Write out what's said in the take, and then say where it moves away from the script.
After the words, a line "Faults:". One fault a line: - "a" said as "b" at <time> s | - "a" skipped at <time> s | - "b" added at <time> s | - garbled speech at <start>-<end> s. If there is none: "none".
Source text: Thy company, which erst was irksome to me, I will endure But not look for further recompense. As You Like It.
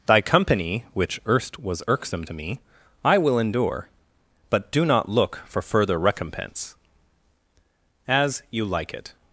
Thy company, which erst was irksome to me, I will endure But do not look for further recompense. As You Like It.
Faults:
- "do" added at 4.7 s